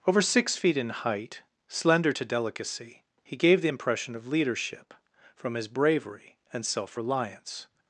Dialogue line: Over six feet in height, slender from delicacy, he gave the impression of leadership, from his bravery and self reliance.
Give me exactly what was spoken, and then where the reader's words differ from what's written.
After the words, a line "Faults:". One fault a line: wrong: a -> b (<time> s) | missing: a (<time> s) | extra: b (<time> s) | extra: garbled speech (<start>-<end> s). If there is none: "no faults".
Over six feet in height, slender to delicacy, he gave the impression of leadership, from his bravery and self reliance.
Faults:
wrong: from -> to (2.1 s)